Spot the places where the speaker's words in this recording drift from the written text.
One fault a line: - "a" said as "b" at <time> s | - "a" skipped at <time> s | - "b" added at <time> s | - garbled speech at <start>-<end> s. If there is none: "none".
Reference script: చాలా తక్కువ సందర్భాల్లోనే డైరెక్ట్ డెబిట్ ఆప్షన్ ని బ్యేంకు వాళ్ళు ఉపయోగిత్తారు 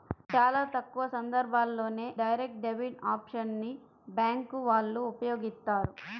none